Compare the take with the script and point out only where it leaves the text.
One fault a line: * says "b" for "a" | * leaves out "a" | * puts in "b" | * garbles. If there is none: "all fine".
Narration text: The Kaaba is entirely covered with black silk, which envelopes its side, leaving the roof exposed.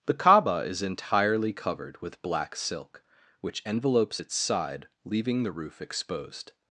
all fine